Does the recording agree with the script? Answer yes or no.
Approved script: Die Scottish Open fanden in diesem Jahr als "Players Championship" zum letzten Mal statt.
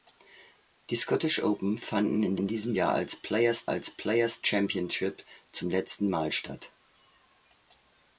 no